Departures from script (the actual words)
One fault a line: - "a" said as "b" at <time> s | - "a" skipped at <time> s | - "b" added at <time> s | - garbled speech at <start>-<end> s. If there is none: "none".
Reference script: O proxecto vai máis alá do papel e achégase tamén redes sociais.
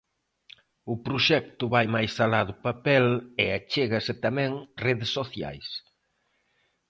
none